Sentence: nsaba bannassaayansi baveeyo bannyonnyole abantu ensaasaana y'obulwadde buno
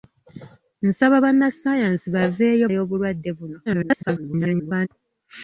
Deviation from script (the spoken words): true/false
true